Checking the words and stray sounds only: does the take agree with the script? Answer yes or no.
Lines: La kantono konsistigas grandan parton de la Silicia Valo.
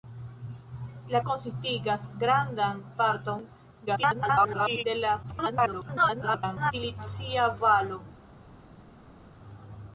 no